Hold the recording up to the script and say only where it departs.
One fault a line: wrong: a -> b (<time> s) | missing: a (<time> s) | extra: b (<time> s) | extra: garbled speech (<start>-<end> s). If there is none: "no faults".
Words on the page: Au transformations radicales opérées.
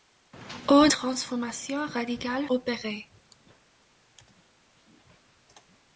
no faults